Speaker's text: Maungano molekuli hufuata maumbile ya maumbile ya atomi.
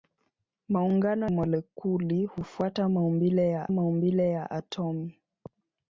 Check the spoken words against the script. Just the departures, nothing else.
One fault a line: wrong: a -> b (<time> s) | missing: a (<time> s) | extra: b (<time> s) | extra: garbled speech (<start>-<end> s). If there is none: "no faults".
no faults